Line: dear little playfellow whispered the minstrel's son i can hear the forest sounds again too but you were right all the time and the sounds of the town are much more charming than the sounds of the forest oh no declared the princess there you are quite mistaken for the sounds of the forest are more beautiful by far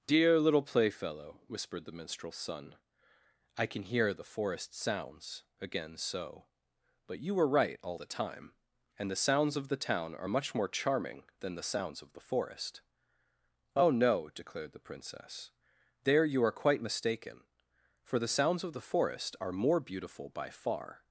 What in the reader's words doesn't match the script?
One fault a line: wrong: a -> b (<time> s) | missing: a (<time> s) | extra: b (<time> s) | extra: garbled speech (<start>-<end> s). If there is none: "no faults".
wrong: too -> so (6.0 s)